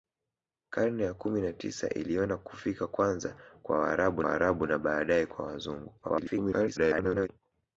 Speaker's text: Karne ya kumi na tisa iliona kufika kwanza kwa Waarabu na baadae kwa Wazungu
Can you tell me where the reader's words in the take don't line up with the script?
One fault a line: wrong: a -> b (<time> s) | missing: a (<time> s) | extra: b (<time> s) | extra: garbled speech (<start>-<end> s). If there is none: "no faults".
extra: Waarabu (4.2 s)
extra: garbled speech (6.0-7.3 s)